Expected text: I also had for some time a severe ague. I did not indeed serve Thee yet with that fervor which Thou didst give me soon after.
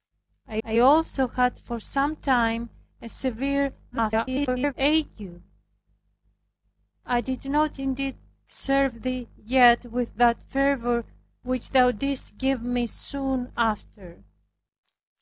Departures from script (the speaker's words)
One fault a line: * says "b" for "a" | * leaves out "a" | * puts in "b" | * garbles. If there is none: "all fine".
* puts in "I"
* garbles